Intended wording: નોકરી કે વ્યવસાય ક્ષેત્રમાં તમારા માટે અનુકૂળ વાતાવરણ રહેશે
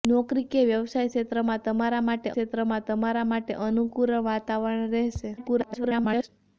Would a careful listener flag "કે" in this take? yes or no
no